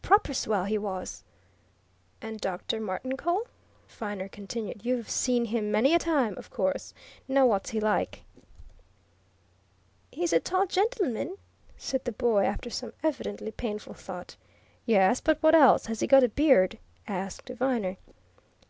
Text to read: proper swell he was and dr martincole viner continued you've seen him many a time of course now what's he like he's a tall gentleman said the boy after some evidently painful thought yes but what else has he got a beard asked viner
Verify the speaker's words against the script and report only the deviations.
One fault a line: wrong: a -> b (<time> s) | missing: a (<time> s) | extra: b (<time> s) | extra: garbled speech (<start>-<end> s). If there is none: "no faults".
no faults